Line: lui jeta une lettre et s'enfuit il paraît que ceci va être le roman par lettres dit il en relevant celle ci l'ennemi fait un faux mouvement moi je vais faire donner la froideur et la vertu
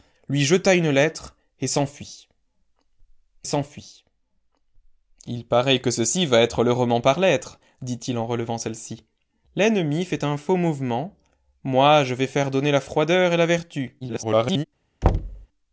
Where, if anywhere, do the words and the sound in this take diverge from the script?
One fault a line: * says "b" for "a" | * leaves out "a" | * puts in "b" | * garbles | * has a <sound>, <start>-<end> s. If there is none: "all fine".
* puts in "s'enfuit"
* garbles
* has a thud, 15.0-15.5 s